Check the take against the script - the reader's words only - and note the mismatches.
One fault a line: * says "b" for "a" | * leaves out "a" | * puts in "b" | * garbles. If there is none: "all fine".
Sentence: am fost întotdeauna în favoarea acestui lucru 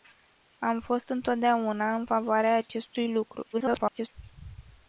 * garbles